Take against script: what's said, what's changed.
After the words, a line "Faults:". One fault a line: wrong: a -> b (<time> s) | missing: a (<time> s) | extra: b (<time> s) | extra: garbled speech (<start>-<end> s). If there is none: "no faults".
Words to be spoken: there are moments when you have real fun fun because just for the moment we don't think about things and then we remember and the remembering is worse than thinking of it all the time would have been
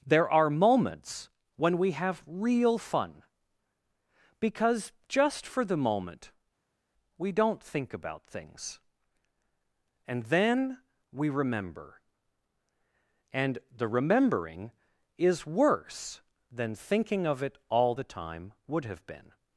there are moments when we have real fun because just for the moment we don't think about things and then we remember and the remembering is worse than thinking of it all the time would have been
Faults:
wrong: you -> we (1.8 s)
missing: fun (3.2 s)